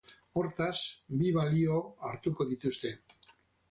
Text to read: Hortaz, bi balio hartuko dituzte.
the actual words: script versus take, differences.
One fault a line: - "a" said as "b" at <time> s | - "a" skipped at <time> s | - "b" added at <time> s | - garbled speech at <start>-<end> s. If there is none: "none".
none